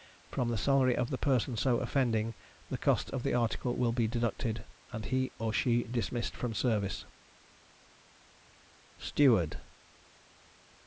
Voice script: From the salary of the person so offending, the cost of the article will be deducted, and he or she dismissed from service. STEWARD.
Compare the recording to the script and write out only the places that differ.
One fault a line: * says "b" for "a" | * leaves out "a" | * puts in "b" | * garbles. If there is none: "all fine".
all fine